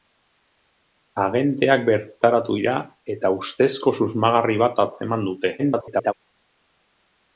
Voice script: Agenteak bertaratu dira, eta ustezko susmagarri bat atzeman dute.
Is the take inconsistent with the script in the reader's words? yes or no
yes